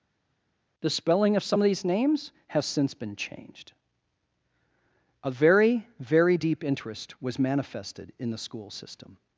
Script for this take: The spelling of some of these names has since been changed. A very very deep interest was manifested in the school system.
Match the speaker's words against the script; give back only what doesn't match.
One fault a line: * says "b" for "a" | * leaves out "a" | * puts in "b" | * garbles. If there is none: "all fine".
all fine